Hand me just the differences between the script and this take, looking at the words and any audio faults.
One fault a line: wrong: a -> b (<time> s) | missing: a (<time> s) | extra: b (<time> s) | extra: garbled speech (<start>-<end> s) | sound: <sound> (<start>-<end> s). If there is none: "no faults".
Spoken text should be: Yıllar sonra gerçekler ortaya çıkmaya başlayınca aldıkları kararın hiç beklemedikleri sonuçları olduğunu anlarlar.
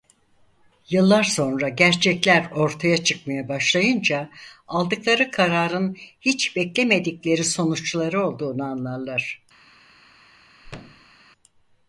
sound: thud (10.6-11.1 s)